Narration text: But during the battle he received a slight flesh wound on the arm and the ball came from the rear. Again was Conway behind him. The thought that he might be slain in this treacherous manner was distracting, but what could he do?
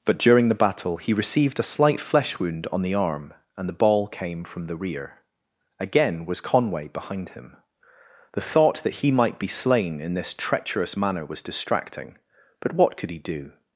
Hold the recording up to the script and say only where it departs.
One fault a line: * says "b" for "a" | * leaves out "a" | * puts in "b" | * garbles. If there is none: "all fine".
all fine